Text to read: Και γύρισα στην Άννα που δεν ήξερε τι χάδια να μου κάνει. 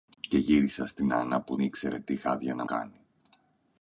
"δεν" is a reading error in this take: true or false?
true